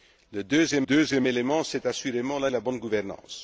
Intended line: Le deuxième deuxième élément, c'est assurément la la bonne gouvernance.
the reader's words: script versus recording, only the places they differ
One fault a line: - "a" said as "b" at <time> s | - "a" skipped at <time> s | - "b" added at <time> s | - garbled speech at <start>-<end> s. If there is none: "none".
none